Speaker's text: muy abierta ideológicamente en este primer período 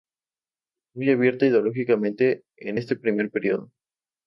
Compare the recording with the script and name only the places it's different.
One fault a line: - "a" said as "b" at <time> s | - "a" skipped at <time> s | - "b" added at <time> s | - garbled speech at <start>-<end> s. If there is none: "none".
none